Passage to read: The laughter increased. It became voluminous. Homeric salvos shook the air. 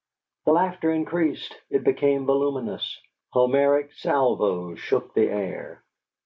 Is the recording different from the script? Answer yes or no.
no